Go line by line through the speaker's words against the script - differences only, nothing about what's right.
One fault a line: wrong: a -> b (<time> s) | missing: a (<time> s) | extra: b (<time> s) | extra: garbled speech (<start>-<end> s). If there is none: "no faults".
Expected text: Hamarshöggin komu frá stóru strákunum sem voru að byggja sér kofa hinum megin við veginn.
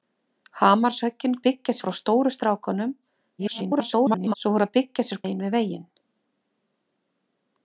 wrong: komu -> byggja (1.5 s)
extra: garbled speech (3.4-4.3 s)
missing: kofa hinum (5.2 s)